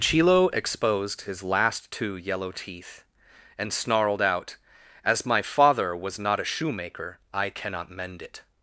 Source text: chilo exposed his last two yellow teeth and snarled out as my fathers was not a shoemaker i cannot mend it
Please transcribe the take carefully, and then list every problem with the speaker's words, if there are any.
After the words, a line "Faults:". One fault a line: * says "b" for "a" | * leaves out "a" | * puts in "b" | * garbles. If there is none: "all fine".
chilo exposed his last two yellow teeth and snarled out as my father was not a shoemaker i cannot mend it
Faults:
* says "father" for "fathers"